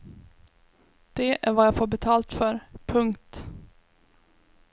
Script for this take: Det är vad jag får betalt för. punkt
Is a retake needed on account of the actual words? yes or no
no